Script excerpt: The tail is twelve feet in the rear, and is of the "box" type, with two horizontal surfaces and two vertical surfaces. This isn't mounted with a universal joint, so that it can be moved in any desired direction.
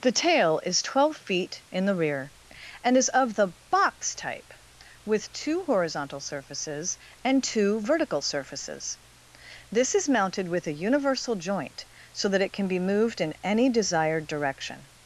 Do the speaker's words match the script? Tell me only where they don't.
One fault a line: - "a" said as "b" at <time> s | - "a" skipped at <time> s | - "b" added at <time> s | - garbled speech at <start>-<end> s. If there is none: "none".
- "isn't" said as "is" at 9.9 s